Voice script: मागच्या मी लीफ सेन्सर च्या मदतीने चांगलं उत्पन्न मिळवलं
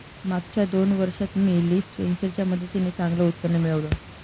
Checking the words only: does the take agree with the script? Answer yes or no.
no